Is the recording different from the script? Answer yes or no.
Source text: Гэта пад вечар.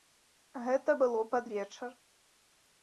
yes